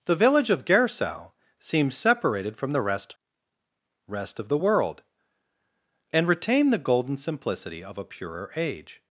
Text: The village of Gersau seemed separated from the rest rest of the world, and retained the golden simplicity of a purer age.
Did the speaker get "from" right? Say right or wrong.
right